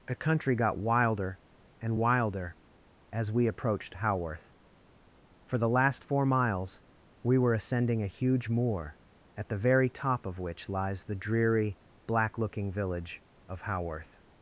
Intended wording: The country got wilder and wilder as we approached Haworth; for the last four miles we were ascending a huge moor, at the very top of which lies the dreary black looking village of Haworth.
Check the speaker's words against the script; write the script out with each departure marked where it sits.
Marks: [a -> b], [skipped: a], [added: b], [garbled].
The country got wilder and wilder as we approached Haworth; for the last four miles we were ascending a huge moor, at the very top of which lies the dreary black looking village of Haworth.